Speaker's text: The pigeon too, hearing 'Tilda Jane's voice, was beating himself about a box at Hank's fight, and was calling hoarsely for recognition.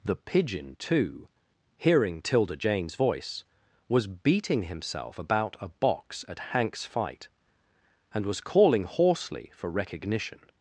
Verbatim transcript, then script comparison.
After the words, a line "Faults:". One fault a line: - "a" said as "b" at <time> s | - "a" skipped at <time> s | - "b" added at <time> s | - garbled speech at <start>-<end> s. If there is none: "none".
The pigeon too, hearing 'Tilda Jane's voice, was beating himself about a box at Hank's fight, and was calling hoarsely for recognition.
Faults:
none